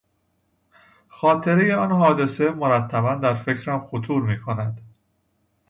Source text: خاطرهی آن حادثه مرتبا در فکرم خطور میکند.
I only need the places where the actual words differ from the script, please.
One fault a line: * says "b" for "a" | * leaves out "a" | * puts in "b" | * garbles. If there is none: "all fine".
all fine